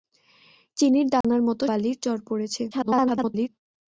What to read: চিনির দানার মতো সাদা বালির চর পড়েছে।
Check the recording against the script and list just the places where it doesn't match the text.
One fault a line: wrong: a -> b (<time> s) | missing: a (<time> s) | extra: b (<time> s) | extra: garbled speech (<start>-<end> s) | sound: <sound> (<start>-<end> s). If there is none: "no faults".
sound: dropout (1.2-1.2 s)
missing: সাদা (1.6 s)
extra: garbled speech (2.7-3.5 s)